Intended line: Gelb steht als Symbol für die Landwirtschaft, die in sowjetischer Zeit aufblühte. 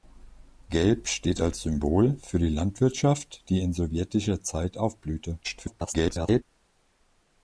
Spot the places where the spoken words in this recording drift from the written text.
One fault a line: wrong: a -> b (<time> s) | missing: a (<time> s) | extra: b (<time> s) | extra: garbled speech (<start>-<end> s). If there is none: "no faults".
extra: garbled speech (5.4-6.4 s)